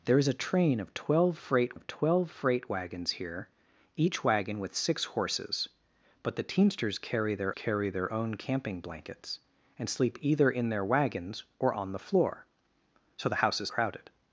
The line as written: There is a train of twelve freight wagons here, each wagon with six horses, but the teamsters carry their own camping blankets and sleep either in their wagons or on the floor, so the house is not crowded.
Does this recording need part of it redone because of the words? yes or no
yes